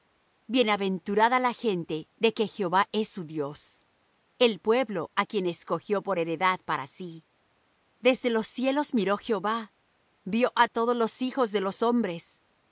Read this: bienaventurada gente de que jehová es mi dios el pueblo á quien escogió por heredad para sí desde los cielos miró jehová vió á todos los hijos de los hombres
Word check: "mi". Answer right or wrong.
wrong